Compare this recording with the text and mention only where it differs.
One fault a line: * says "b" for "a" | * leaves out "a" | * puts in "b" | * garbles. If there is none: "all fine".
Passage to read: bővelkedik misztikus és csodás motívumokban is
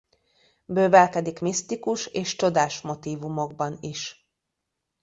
all fine